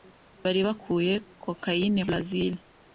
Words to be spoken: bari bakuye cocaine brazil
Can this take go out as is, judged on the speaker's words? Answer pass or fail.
pass